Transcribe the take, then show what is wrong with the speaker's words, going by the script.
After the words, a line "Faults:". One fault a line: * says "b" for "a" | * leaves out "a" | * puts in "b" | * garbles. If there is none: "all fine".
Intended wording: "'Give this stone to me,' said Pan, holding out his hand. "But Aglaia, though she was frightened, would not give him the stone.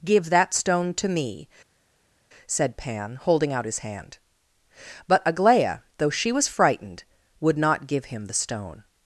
"'Give that stone to me,' said Pan, holding out his hand. "But Aglaia, though she was frightened, would not give him the stone.
Faults:
* says "that" for "this"